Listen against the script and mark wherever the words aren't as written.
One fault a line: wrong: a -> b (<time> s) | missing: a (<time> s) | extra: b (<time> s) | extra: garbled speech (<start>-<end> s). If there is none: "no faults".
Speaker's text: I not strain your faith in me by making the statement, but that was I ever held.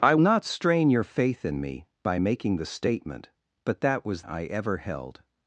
no faults